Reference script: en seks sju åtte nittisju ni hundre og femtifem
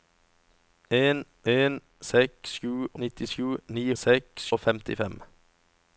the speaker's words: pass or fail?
fail